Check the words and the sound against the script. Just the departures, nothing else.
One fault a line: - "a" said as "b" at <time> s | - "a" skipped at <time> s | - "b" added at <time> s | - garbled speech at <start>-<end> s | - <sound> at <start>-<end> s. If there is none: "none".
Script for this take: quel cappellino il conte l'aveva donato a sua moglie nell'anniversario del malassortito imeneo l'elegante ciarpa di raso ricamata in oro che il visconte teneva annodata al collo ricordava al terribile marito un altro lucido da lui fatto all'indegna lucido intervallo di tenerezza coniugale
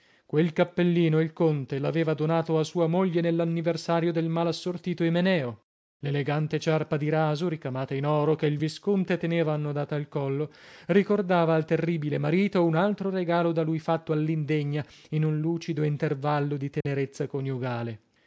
- "lucido" said as "regalo" at 13.1 s
- "in un" added at 15.1 s
- dropout at 16.8-16.9 s